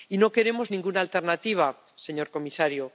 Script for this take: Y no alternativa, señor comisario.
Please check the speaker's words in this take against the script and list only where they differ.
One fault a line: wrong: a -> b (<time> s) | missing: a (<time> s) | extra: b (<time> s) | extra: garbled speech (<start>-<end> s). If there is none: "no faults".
extra: queremos ninguna (0.3 s)